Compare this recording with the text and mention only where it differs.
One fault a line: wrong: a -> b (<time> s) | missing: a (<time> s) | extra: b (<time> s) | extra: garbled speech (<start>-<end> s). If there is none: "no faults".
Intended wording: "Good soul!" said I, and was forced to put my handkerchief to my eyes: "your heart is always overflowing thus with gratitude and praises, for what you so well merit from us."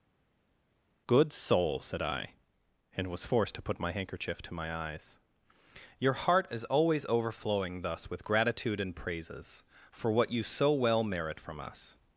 no faults